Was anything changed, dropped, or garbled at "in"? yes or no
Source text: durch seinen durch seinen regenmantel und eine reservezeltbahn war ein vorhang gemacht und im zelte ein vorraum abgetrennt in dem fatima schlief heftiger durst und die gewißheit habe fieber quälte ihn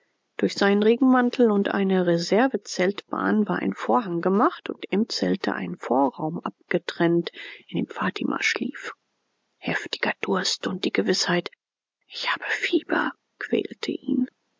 no